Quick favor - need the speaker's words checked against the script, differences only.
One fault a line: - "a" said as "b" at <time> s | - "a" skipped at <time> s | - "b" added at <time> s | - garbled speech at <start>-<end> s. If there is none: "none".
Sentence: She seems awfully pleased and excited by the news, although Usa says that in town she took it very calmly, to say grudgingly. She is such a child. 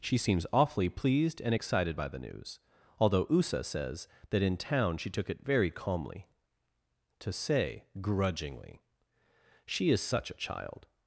none